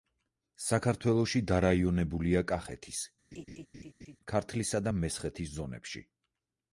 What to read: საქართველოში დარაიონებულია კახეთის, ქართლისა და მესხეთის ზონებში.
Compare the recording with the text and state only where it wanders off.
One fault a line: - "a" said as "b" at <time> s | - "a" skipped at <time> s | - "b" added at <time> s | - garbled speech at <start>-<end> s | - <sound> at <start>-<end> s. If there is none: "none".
- laugh at 3.3-4.2 s